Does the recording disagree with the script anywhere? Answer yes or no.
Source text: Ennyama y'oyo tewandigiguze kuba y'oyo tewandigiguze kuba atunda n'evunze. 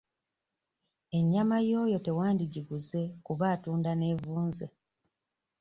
yes